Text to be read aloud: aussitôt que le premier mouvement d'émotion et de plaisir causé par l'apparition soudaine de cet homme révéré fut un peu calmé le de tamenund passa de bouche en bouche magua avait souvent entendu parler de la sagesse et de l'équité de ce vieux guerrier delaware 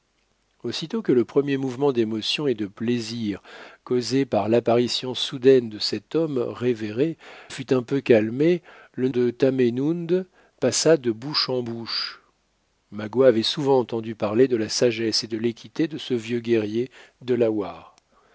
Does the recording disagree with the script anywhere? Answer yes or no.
no